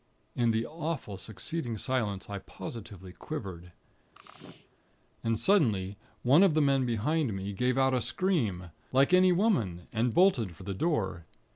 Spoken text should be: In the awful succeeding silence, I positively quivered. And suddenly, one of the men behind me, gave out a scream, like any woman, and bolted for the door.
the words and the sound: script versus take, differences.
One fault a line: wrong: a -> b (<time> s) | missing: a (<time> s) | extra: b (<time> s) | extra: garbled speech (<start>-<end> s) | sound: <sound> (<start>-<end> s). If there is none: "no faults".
sound: sneeze (4.1-4.8 s)